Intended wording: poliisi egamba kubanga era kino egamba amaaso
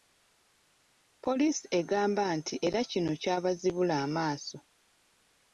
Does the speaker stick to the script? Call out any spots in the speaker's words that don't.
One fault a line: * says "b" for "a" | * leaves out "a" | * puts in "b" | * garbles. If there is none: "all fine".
* says "nti" for "kubanga"
* says "kyabazibula" for "egamba"